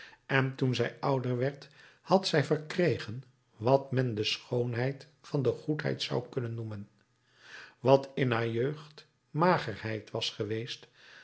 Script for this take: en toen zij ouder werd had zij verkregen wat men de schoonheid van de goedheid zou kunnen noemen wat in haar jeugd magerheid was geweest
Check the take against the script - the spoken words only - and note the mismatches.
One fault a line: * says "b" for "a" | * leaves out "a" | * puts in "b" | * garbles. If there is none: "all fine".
all fine